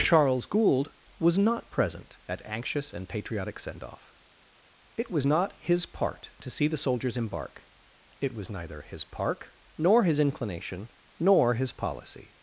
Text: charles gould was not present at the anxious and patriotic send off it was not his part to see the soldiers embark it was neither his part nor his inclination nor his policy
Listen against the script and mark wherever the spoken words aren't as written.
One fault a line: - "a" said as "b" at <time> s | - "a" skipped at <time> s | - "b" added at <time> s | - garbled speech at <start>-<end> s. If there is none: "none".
- "the" skipped at 2.4 s
- "part" said as "park" at 9.0 s